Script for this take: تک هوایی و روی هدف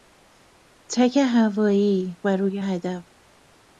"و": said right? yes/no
yes